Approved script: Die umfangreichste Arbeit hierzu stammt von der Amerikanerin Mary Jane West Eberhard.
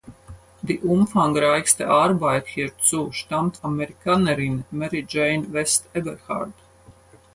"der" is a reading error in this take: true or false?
true